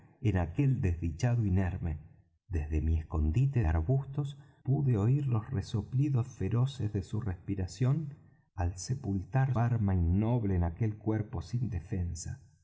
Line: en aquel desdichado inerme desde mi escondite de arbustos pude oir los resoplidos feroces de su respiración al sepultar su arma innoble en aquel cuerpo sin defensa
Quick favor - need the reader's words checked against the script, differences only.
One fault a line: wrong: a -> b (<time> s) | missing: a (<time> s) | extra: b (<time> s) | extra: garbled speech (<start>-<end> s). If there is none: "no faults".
missing: de (3.6 s)
missing: su (9.5 s)